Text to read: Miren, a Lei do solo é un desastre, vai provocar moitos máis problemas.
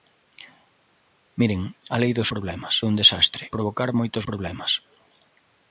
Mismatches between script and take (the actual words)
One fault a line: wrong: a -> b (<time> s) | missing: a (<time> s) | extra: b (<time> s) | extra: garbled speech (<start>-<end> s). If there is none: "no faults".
wrong: solo -> problemas (2.3 s)
missing: vai (3.4 s)
missing: máis (4.2 s)